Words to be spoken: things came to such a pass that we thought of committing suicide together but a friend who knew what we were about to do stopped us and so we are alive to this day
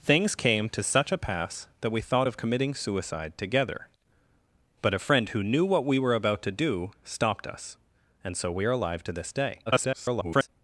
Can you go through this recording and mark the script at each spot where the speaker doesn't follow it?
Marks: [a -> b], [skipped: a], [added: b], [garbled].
things came to such a pass that we thought of committing suicide together but a friend who knew what we were about to do stopped us and so we are alive to this day [garbled]